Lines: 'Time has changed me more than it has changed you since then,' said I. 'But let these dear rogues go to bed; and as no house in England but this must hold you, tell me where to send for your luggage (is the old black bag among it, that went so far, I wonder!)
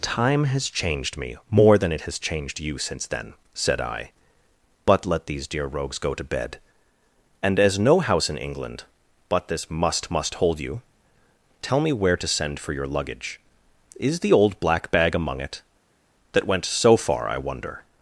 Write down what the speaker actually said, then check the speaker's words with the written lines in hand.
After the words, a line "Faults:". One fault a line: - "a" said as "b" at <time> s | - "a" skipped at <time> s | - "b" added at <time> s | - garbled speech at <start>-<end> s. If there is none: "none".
'Time has changed me more than it has changed you since then,' said I. 'But let these dear rogues go to bed; and as no house in England but this must must hold you, tell me where to send for your luggage (is the old black bag among it, that went so far, I wonder!)
Faults:
- "must" added at 10.1 s